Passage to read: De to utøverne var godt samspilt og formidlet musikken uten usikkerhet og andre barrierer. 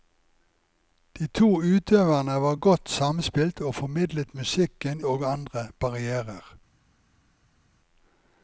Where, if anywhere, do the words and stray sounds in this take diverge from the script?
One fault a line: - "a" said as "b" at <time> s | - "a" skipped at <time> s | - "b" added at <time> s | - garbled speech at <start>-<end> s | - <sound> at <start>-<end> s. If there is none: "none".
- "uten usikkerhet" skipped at 5.0 s